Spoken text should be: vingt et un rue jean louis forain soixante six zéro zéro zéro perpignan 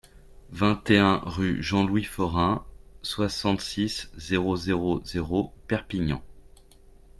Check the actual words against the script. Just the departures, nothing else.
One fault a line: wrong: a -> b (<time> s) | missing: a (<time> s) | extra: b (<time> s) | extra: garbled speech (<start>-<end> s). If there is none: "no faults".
no faults